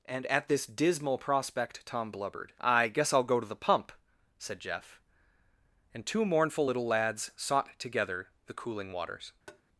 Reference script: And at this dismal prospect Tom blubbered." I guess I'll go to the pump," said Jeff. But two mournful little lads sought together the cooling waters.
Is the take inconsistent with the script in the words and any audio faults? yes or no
yes